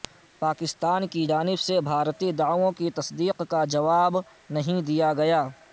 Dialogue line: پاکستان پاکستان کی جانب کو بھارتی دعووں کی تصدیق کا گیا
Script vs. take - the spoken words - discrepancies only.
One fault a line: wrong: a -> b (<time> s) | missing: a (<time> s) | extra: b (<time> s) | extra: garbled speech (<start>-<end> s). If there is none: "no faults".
missing: پاکستان (1.1 s)
wrong: کو -> سے (1.6 s)
extra: جواب نہیں دیا (3.7 s)